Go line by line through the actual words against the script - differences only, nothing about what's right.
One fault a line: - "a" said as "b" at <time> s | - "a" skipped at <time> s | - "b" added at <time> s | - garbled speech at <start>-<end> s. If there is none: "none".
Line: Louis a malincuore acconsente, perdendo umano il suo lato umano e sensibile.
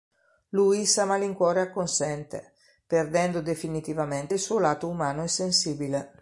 - "umano" said as "definitivamente" at 3.4 s